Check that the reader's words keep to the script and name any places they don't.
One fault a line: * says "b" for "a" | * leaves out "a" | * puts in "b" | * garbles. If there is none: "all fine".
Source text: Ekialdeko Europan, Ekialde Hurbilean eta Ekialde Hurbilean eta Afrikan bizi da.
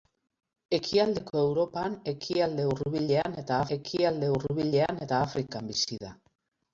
all fine